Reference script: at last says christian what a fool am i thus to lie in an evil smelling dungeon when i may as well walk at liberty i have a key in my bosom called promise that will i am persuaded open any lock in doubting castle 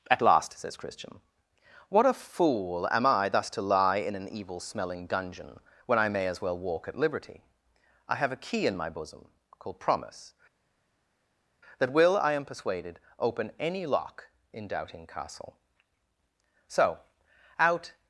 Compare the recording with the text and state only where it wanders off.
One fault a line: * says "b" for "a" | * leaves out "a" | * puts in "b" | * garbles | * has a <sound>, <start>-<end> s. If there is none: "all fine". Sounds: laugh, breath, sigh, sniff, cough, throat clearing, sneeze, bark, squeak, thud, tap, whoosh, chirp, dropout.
* puts in "so out"